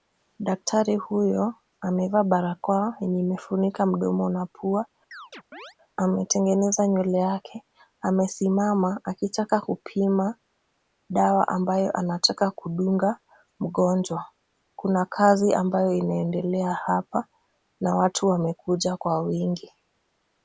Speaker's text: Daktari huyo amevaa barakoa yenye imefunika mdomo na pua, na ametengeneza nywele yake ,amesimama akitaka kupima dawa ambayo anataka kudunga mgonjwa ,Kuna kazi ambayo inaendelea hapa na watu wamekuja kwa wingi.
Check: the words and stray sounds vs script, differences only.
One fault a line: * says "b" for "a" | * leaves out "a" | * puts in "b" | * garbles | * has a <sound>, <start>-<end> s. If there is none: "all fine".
* leaves out "na"
* has a chirp, 5.1-5.8 s